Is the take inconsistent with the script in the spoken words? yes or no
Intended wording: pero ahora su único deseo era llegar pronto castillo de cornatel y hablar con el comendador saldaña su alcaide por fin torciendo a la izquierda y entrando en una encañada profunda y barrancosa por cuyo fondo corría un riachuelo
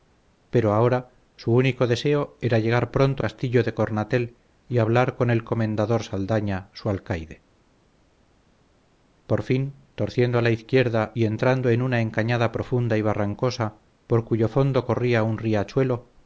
no